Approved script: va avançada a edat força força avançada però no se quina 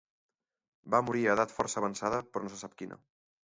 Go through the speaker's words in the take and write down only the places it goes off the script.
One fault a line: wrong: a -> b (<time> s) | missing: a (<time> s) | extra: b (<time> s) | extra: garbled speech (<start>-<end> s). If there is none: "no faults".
wrong: avançada -> morir (1.1 s)
missing: força (1.8 s)
extra: sap (2.6 s)